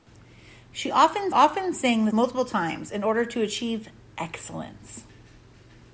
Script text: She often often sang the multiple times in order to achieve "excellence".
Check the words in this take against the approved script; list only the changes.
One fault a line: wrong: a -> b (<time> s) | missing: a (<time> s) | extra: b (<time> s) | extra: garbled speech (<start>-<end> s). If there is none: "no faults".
no faults